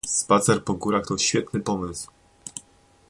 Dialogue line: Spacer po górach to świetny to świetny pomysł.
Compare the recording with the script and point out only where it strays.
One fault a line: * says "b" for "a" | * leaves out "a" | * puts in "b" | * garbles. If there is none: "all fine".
* leaves out "to świetny"